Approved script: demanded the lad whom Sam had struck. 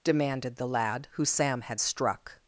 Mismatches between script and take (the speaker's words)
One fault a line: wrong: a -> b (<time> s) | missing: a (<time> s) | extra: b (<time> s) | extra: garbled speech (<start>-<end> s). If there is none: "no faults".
wrong: whom -> who (1.1 s)